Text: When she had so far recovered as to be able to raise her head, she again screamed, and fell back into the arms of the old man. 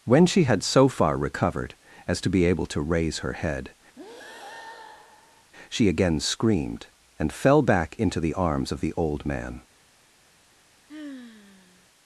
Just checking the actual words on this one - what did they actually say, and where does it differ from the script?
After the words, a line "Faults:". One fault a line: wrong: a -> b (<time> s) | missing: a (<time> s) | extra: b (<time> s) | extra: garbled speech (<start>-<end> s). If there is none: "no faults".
When she had so far recovered as to be able to raise her head, she again screamed, and fell back into the arms of the old man.
Faults:
no faults